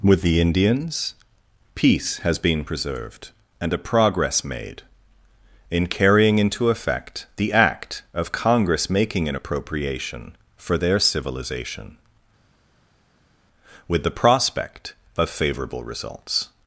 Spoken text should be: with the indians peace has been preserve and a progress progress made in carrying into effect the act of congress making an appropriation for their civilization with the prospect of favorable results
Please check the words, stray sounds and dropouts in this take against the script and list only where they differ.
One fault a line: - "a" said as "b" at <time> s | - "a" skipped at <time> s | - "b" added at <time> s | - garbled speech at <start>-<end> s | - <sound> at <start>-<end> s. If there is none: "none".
- "preserve" said as "preserved" at 2.6 s
- "progress" skipped at 4.4 s